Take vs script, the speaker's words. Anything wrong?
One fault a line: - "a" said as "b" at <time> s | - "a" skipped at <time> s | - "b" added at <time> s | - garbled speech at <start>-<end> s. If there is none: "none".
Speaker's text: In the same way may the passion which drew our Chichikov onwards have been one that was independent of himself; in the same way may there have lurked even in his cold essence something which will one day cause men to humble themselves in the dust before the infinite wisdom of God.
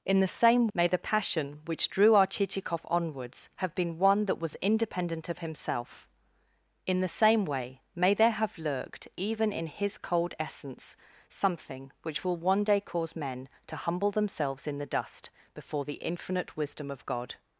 - "way" skipped at 0.7 s